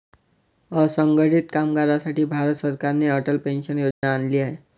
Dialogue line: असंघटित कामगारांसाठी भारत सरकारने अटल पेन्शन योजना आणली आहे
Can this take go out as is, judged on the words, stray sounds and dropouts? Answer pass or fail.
fail